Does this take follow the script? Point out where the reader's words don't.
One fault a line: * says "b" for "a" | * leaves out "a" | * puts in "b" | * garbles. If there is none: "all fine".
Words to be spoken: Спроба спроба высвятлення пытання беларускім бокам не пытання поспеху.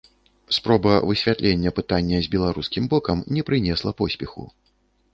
* leaves out "спроба"
* puts in "з"
* says "прынесла" for "пытання"